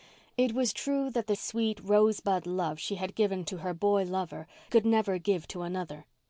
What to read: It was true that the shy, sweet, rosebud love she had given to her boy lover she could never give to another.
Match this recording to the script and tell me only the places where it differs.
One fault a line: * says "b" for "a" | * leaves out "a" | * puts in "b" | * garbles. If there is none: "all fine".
* leaves out "shy"
* leaves out "she"